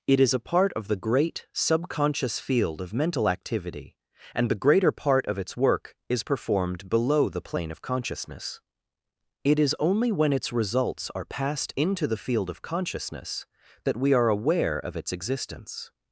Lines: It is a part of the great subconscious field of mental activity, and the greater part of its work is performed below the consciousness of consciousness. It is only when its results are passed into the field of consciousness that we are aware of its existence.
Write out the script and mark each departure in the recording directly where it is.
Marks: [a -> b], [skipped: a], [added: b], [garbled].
It is a part of the great subconscious field of mental activity, and the greater part of its work is performed below the [consciousness -> plane] of consciousness. It is only when its results are passed into the field of consciousness that we are aware of its existence.